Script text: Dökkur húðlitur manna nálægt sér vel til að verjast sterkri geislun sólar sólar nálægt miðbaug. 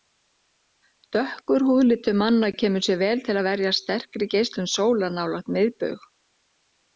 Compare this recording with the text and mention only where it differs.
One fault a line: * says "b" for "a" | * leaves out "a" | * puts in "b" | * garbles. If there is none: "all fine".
* says "kemur" for "nálægt"
* leaves out "sólar"